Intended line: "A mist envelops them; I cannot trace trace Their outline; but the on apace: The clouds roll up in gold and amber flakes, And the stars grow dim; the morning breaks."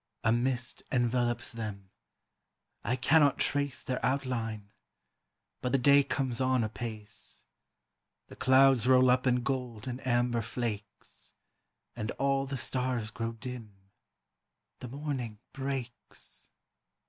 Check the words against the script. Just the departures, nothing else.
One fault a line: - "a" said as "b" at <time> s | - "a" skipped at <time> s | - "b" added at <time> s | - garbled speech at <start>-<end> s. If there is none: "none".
- "trace" skipped at 3.8 s
- "day comes" added at 5.8 s
- "all" added at 12.1 s